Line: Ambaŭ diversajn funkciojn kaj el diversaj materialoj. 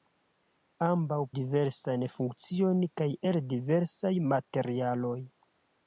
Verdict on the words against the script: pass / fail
pass